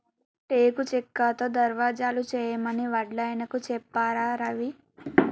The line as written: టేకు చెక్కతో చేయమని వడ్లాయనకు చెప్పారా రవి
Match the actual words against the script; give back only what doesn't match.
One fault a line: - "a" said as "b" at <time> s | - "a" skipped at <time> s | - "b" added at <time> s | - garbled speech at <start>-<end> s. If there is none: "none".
- "దర్వాజలు" added at 1.5 s